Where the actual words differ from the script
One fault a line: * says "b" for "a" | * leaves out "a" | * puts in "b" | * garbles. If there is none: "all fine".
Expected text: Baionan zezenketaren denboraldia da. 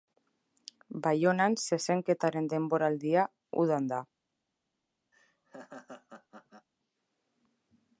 * puts in "udan"